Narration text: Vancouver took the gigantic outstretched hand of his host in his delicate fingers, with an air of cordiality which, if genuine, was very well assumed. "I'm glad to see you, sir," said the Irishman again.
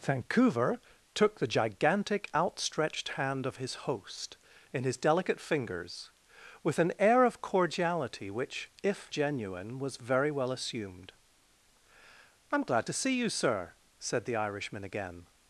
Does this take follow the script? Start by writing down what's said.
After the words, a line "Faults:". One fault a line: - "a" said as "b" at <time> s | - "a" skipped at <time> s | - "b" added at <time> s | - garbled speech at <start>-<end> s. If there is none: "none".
Vancouver took the gigantic outstretched hand of his host in his delicate fingers, with an air of cordiality which, if genuine, was very well assumed. "I'm glad to see you, sir," said the Irishman again.
Faults:
none